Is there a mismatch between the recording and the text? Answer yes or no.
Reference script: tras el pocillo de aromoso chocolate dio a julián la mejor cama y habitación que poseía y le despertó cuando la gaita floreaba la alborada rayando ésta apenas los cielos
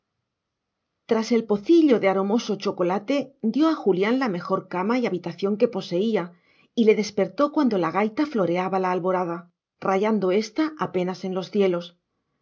yes